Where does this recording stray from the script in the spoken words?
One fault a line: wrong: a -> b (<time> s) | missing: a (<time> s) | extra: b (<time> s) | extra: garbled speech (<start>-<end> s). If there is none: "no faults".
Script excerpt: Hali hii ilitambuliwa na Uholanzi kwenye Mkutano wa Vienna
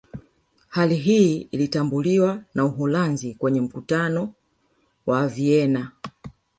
no faults